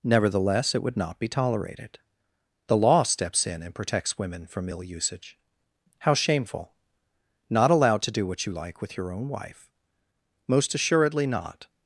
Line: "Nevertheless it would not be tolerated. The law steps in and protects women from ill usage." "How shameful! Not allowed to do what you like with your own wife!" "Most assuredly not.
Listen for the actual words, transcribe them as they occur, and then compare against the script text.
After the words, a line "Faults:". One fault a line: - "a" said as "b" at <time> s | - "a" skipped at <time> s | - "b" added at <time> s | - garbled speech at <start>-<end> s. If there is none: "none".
"Nevertheless it would not be tolerated. The law steps in and protects women from ill usage." "How shameful! Not allowed to do what you like with your own wife!" "Most assuredly not.
Faults:
none